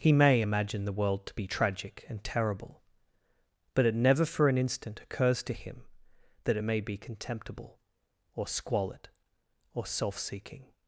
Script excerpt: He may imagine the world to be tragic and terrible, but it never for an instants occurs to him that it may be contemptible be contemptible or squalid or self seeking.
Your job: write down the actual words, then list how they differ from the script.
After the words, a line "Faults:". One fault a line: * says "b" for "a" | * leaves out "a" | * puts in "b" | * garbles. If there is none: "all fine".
He may imagine the world to be tragic and terrible, but it never for an instant occurs to him that it may be contemptible or squalid or self seeking.
Faults:
* says "instant" for "instants"
* leaves out "be contemptible"